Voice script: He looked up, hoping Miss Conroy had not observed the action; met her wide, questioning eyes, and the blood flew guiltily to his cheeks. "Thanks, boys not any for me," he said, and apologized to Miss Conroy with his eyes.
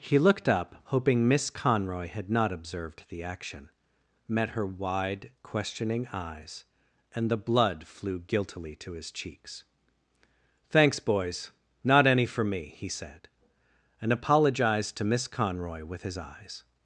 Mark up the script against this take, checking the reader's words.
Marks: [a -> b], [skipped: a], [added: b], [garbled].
He looked up, hoping Miss Conroy had not observed the action; met her wide, questioning eyes, and the blood flew guiltily to his cheeks. "Thanks, boys not any for me," he said, and apologized to Miss Conroy with his eyes.